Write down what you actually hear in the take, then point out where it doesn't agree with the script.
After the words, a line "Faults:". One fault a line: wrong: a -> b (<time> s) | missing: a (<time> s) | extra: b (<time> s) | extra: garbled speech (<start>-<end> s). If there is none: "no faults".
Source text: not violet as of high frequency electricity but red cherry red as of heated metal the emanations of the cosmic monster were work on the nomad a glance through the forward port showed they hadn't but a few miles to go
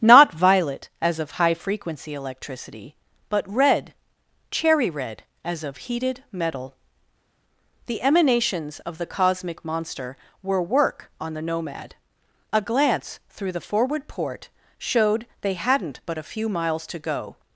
not violet as of high frequency electricity but red cherry red as of heated metal the emanations of the cosmic monster were work on the nomad a glance through the forward port showed they hadn't but a few miles to go
Faults:
no faults